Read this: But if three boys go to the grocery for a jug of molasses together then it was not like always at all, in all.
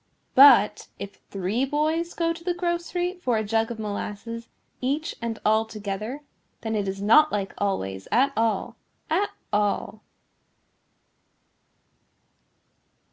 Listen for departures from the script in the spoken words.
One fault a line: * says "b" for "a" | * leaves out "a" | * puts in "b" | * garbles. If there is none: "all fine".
* puts in "each and all"
* says "is" for "was"
* says "at" for "in"